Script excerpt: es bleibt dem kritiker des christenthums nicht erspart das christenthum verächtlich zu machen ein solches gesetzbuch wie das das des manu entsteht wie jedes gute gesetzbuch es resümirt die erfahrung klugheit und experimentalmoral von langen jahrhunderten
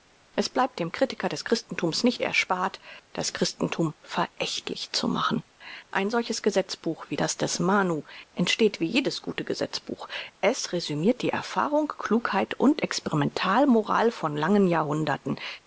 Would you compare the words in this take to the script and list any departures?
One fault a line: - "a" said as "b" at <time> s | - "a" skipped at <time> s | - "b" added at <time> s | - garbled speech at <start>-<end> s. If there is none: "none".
- "das" skipped at 7.4 s